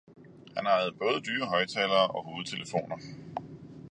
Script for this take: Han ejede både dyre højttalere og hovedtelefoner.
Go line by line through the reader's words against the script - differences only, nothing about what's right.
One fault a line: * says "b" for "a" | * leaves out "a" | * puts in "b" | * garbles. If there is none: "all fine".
all fine